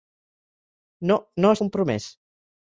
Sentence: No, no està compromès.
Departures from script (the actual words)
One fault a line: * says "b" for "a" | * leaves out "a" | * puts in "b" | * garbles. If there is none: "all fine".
* leaves out "està"